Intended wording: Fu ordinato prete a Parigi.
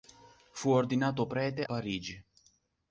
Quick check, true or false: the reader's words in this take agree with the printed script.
false